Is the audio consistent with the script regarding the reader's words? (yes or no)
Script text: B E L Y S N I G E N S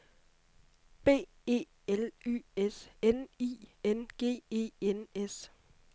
no